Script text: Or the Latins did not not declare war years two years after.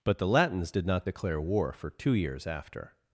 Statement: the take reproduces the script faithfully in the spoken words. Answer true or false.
false